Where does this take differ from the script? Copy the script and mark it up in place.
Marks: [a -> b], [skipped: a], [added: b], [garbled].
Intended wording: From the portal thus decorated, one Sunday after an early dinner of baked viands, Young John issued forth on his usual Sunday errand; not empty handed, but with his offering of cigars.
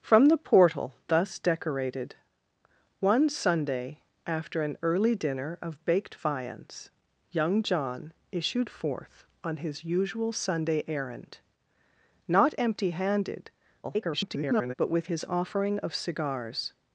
From the portal thus decorated, one Sunday after an early dinner of baked viands, Young John issued forth on his usual Sunday errand; not empty handed, [garbled] but with his offering of cigars.